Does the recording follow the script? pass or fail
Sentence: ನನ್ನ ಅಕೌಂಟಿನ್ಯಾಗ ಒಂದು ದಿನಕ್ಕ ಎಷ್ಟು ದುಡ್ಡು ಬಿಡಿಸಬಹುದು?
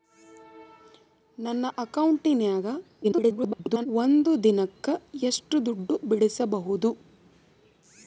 fail